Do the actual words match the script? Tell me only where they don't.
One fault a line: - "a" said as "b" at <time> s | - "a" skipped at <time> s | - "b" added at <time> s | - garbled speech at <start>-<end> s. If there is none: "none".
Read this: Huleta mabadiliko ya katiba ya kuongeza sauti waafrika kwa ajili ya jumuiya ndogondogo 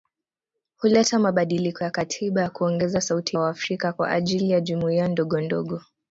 none